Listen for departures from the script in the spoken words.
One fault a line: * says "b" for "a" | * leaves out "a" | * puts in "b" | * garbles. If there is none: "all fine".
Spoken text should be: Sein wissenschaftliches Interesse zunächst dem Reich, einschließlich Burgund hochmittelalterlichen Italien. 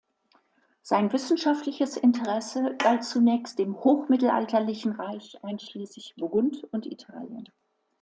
* puts in "galt"
* puts in "hochmittelalterlichen"
* says "und" for "hochmittelalterlichen"